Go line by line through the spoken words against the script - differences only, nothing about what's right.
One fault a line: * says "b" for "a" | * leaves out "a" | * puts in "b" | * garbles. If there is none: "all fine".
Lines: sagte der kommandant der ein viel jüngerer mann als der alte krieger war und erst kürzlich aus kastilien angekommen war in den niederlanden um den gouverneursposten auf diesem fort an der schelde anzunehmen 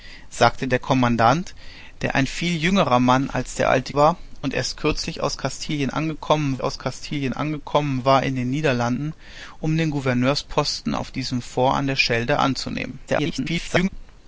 * leaves out "krieger"
* puts in "aus kastilien angekommen"
* garbles